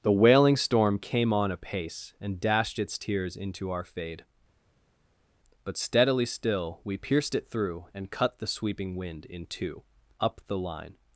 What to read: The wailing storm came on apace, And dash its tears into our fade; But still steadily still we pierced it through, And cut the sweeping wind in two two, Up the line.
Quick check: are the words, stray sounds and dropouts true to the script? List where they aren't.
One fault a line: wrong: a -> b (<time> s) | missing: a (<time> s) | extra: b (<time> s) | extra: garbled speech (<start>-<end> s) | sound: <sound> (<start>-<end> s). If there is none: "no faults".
wrong: dash -> dashed (2.4 s)
missing: still (5.8 s)
missing: two (9.8 s)